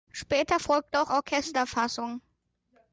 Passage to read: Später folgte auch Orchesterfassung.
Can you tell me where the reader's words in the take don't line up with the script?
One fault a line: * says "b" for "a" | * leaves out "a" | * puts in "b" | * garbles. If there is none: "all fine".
all fine